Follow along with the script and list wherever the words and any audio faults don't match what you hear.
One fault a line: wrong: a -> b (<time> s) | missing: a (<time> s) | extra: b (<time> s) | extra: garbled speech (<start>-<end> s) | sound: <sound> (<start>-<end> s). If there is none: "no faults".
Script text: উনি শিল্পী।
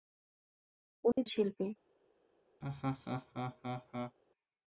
sound: dropout (1.1-1.2 s)
sound: laugh (2.6-4.2 s)